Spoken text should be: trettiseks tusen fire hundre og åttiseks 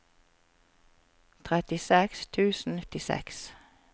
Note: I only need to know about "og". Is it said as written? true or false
false